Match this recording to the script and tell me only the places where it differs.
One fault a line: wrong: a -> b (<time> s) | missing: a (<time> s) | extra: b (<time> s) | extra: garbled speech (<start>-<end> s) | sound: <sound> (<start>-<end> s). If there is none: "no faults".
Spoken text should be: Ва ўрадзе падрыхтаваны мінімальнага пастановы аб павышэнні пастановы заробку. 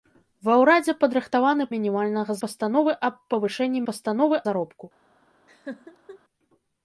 sound: laugh (5.5-6.2 s)